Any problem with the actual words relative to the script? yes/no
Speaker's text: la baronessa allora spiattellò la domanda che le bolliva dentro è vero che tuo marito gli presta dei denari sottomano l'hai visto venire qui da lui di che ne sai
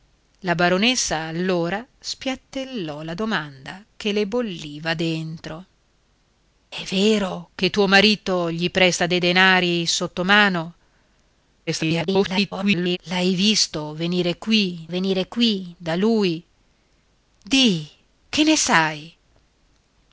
yes